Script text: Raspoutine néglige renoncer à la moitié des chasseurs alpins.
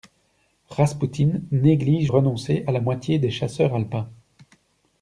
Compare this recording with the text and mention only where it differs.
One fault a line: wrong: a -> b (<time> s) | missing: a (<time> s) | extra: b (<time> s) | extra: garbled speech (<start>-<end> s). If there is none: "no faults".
no faults